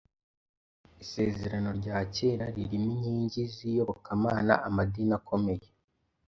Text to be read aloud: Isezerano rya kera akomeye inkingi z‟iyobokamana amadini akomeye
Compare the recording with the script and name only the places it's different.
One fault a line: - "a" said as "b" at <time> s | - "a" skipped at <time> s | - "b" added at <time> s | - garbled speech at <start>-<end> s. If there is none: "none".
- "akomeye" said as "ririmo" at 2.6 s